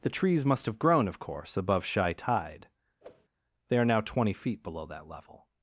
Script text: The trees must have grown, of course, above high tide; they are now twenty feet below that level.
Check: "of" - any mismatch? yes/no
no